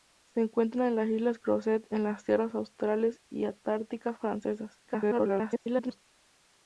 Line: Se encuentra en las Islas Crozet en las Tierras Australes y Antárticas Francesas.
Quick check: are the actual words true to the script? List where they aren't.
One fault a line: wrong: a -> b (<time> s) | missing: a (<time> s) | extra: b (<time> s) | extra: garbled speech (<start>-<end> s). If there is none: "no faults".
extra: garbled speech (4.9-6.0 s)